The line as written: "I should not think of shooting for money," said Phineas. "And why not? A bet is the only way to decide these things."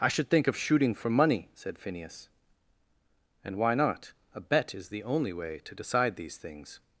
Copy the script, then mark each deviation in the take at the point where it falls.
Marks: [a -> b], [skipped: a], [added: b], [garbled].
"I should [skipped: not] think of shooting for money," said Phineas. "And why not? A bet is the only way to decide these things."